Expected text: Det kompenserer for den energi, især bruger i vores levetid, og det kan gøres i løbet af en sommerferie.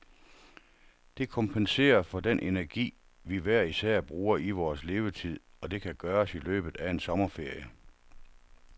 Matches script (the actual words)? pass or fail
fail